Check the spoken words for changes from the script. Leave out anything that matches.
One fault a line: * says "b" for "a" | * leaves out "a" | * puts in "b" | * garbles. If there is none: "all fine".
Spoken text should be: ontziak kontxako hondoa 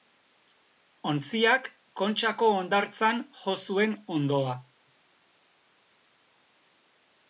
* puts in "hondartzan jo zuen"